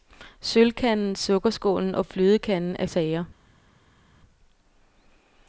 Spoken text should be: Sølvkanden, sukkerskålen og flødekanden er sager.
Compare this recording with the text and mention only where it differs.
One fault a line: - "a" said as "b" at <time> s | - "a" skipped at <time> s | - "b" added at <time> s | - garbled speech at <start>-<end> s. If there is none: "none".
none